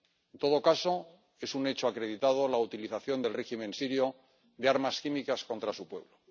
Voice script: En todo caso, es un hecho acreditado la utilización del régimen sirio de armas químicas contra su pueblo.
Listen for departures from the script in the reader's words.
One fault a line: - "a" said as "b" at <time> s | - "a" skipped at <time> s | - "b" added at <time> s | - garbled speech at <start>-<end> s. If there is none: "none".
none